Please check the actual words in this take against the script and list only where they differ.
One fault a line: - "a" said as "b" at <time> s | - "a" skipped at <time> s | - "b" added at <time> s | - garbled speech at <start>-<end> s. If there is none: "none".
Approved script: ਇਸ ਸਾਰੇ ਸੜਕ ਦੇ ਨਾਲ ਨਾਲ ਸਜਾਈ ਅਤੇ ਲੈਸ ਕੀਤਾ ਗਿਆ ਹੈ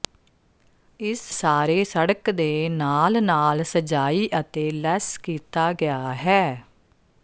none